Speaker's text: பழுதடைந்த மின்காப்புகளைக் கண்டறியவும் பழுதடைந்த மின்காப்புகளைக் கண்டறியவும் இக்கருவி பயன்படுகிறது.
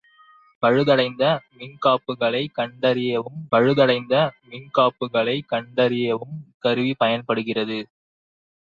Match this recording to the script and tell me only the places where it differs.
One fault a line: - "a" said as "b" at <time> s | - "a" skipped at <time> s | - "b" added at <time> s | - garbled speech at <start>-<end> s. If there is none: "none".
none